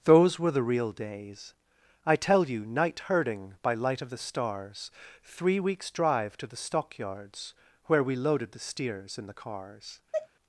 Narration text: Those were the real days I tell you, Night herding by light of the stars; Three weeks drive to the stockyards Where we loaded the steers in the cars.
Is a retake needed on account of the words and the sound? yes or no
yes